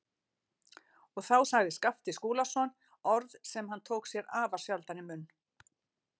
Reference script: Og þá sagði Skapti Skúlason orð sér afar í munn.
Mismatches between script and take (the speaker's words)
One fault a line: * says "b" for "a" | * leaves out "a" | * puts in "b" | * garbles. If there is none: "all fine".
* puts in "sem hann tók"
* puts in "sjaldan"